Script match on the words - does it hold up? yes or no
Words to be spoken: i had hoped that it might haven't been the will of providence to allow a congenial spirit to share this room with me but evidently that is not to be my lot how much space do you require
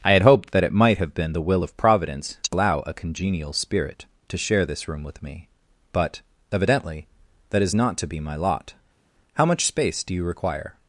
no